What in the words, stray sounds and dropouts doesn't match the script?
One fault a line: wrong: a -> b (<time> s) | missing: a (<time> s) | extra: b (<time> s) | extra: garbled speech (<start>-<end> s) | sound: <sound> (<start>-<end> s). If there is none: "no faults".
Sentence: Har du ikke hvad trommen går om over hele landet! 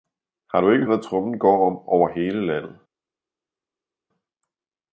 no faults